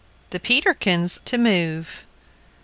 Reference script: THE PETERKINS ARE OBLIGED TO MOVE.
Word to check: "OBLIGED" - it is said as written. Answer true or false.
false